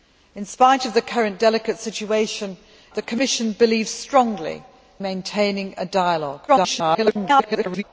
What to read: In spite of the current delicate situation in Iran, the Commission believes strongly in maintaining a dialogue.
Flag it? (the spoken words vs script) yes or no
yes